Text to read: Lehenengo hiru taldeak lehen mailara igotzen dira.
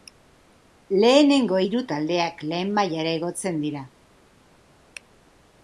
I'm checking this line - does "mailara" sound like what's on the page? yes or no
yes